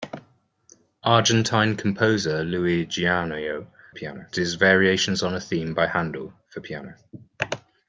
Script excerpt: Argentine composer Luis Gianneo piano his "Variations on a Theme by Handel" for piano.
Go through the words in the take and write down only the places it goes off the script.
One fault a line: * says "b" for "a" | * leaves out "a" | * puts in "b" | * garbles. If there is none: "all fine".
all fine